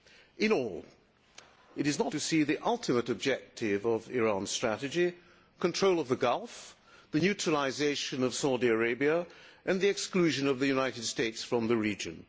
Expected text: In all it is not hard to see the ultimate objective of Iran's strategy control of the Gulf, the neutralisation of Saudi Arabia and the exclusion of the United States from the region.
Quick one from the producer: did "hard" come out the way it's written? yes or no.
no